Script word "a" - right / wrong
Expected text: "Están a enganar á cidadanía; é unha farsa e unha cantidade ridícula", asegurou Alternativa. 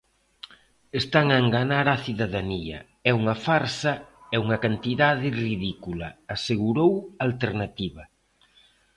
right